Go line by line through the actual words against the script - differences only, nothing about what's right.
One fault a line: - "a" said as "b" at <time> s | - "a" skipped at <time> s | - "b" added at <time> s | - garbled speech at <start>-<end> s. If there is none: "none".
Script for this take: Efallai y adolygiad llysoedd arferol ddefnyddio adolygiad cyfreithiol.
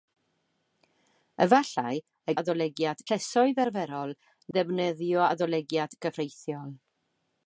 none